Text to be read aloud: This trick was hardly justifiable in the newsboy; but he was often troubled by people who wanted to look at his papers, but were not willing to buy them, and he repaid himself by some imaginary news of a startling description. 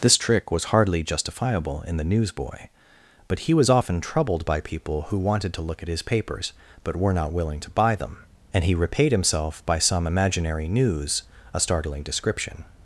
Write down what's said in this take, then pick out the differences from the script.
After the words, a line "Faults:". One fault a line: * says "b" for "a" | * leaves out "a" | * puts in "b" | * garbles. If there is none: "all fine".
This trick was hardly justifiable in the newsboy; but he was often troubled by people who wanted to look at his papers, but were not willing to buy them, and he repaid himself by some imaginary news a startling description.
Faults:
* leaves out "of"